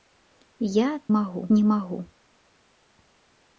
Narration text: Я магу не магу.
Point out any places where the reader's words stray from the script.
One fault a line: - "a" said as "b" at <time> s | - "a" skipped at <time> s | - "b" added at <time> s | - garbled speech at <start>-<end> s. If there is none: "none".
none